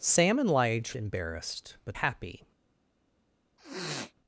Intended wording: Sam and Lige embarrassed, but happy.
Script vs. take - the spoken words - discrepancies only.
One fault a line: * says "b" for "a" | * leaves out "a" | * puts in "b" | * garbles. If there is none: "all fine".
all fine